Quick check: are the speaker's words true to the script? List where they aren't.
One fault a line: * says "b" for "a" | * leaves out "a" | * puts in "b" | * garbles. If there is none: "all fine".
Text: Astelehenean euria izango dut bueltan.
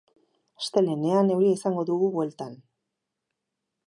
* says "dugu" for "dut"